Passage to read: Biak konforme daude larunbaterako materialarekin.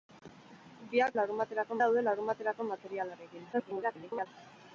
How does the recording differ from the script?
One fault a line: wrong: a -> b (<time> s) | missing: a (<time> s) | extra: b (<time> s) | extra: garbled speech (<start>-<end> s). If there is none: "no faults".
wrong: konforme -> larunbaterako (1.2 s)
extra: garbled speech (3.5-4.3 s)